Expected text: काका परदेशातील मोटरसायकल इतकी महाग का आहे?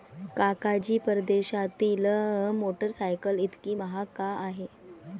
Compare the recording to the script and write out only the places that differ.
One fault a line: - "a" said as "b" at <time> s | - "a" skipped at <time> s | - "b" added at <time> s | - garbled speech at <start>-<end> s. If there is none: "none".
- "जी" added at 0.8 s